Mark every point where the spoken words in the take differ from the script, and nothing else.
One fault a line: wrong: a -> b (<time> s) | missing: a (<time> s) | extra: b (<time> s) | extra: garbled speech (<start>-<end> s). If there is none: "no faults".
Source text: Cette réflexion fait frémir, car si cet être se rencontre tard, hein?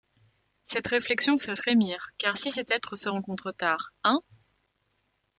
no faults